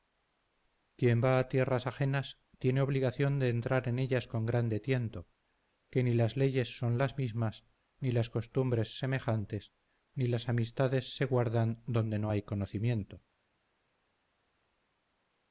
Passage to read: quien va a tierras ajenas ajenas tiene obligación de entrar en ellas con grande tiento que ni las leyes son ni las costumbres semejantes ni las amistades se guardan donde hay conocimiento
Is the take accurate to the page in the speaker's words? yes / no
no